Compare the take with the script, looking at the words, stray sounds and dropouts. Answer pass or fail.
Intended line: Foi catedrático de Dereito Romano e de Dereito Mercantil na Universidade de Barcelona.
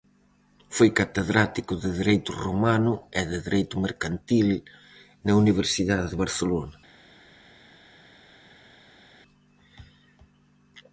pass